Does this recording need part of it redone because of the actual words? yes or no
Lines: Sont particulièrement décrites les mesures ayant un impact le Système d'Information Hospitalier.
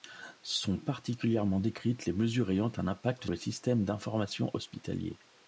no